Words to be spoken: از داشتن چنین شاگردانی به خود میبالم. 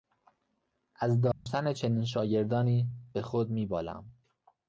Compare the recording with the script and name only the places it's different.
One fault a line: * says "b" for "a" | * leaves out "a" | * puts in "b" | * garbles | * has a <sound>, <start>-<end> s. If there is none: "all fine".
* has a dropout, 1.3-1.5 s